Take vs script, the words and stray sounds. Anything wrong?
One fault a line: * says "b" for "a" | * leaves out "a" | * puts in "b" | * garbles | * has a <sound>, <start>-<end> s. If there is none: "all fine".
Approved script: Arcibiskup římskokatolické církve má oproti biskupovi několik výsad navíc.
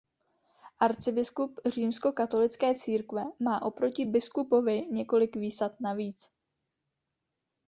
all fine